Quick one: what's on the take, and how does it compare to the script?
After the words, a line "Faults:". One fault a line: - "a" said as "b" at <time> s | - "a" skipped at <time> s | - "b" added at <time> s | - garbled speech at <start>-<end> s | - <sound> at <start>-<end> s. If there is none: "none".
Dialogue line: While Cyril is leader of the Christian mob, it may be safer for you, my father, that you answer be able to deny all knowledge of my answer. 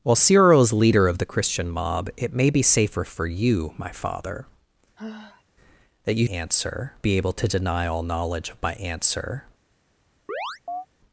While Cyril is leader of the Christian mob, it may be safer for you, my father, that you answer be able to deny all knowledge of my answer.
Faults:
- sigh at 5.0-5.4 s
- chirp at 10.3-10.9 s